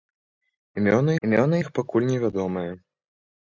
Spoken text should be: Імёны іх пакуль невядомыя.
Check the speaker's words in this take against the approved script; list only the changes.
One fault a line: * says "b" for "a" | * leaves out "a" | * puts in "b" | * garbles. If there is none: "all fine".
* puts in "імёны"